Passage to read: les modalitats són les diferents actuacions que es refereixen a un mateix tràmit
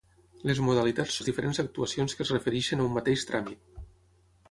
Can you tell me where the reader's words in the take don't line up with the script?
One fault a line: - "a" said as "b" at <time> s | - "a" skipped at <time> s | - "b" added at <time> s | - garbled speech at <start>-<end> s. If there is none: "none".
- "són" skipped at 1.2 s